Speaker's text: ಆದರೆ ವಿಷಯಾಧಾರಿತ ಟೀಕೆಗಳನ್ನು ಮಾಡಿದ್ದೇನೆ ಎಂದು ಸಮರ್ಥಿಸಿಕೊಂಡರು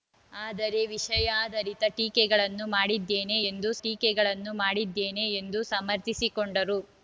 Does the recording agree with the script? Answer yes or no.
no